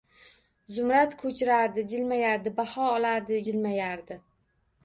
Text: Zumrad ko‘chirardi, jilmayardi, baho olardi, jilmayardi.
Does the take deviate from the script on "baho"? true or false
false